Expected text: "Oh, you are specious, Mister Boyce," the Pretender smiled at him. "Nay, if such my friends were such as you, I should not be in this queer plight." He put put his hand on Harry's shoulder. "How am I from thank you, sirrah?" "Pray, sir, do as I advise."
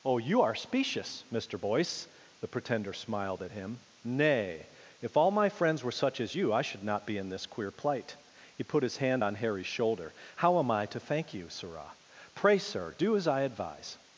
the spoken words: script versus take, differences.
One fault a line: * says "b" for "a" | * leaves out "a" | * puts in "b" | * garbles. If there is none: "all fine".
* says "all" for "such"
* leaves out "put"
* says "to" for "from"